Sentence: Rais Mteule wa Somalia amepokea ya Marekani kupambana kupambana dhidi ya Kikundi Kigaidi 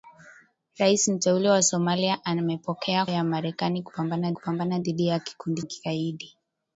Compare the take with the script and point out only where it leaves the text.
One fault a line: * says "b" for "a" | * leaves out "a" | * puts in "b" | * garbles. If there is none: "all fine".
all fine